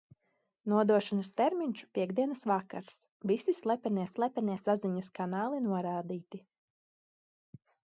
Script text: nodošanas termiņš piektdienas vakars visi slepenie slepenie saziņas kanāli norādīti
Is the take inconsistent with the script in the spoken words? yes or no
no